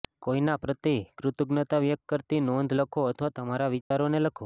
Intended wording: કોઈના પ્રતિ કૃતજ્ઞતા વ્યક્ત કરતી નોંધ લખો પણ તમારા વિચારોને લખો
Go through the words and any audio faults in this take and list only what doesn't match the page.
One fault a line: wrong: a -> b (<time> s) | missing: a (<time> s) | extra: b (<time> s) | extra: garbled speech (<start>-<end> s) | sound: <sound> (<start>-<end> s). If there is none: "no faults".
wrong: પણ -> અથવા (3.1 s)
sound: dropout (3.8-3.9 s)